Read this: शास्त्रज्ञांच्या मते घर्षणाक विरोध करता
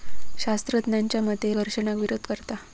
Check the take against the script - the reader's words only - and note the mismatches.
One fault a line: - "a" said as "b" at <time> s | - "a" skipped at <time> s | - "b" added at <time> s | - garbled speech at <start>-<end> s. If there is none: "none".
none